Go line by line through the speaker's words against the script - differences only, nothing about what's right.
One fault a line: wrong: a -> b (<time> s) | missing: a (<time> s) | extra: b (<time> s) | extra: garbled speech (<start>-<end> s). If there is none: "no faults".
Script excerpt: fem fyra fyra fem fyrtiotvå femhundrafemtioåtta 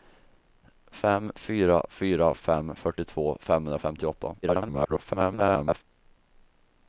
extra: garbled speech (4.4-5.8 s)